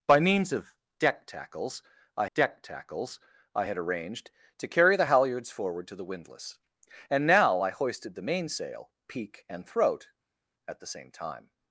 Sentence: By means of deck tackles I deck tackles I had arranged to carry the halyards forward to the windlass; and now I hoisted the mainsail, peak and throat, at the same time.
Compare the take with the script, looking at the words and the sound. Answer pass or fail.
pass